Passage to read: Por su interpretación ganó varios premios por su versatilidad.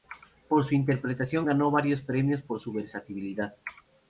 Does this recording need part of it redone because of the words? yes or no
no